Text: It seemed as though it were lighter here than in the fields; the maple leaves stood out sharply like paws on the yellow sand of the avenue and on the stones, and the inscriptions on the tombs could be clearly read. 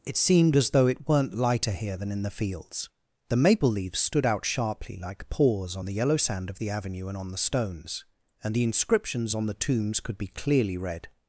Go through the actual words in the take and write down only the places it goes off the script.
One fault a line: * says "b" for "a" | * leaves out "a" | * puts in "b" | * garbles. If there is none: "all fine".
* says "weren't" for "were"